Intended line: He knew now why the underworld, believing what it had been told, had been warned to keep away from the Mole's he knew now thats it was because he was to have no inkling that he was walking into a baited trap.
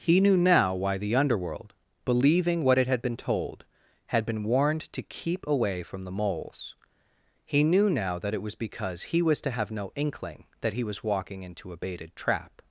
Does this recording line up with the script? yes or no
no